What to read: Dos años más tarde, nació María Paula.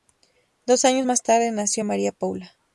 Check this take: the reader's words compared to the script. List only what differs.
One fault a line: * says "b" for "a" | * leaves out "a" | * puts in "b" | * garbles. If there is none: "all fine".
all fine